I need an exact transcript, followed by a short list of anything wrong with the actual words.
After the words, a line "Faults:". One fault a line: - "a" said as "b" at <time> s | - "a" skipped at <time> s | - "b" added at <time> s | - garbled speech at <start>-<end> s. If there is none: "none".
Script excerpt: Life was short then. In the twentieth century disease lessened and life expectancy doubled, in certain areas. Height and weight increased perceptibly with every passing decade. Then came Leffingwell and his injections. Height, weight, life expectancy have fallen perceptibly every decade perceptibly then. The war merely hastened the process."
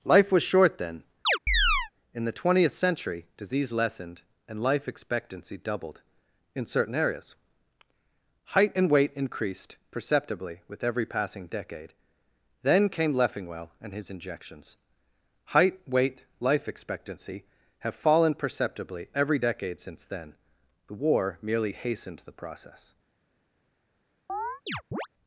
Life was short then. In the twentieth century disease lessened and life expectancy doubled, in certain areas. Height and weight increased perceptibly with every passing decade. Then came Leffingwell and his injections. Height, weight, life expectancy have fallen perceptibly every decade since then. The war merely hastened the process."
Faults:
- "perceptibly" said as "since" at 19.8 s